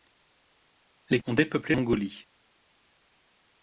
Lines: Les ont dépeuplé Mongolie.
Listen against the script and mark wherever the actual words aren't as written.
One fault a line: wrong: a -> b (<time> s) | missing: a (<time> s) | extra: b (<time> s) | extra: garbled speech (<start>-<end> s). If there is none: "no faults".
no faults